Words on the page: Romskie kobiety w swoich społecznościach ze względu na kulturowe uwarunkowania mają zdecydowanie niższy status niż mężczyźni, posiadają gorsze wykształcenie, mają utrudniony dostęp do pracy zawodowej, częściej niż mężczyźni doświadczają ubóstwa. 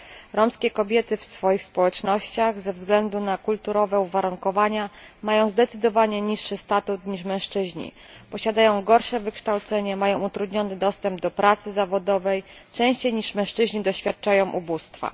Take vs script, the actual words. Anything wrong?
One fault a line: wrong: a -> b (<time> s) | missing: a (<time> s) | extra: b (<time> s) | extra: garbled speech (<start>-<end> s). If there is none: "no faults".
no faults